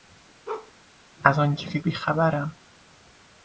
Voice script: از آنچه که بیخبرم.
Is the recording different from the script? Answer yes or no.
no